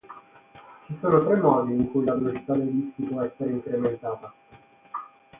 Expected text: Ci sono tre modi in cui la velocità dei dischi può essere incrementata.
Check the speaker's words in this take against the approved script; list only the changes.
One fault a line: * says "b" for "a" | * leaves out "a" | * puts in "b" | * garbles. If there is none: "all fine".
all fine